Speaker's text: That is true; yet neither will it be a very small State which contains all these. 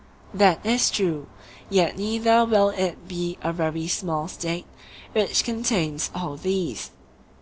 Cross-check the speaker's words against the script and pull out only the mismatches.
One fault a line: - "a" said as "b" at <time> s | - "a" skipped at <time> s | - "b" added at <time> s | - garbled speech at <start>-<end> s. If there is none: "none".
none